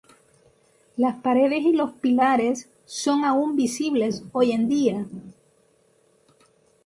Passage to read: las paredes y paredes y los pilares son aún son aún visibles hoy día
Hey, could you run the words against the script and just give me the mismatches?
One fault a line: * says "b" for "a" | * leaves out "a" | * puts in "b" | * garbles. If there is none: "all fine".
* leaves out "paredes y"
* leaves out "son aún"
* puts in "en"